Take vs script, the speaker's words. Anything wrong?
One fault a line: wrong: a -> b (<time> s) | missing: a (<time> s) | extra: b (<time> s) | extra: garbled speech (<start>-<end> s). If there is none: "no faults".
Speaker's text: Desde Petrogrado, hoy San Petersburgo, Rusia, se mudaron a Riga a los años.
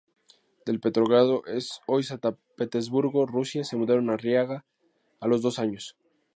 wrong: Desde -> De (0.7 s)
extra: dos (5.4 s)